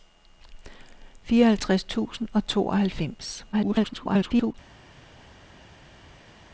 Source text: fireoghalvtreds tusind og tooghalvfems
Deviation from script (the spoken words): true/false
true